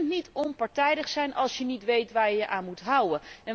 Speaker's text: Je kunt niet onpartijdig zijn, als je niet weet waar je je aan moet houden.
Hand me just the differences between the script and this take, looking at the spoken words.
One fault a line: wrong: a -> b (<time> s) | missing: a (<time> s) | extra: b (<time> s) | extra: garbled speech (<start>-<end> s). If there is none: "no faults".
no faults